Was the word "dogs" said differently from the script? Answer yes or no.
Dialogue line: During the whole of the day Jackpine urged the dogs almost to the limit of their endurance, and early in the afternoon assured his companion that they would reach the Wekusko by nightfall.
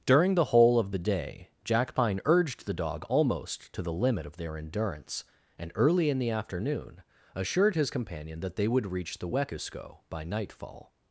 yes